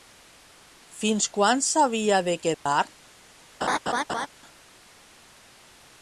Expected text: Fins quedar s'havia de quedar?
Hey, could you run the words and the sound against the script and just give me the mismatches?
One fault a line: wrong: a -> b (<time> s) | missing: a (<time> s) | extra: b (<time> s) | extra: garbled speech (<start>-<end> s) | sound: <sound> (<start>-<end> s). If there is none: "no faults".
wrong: quedar -> quan (1.4 s)
sound: dropout (2.5-2.7 s)
sound: laugh (3.6-4.3 s)